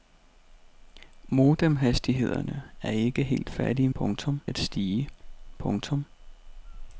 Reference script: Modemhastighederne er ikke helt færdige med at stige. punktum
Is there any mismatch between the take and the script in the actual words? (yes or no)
yes